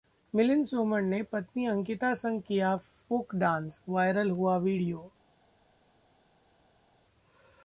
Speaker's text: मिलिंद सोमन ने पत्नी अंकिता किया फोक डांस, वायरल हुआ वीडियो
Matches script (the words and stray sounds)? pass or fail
fail